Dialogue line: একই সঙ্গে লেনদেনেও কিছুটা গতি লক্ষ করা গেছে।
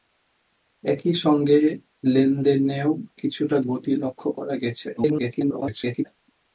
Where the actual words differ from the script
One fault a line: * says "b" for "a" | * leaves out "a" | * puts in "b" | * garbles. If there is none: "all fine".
* garbles